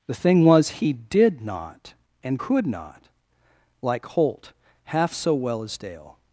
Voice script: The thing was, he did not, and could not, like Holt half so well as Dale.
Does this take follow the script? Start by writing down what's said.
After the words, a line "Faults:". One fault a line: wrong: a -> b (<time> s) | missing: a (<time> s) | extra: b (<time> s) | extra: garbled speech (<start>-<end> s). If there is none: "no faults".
The thing was, he did not, and could not, like Holt half so well as Dale.
Faults:
no faults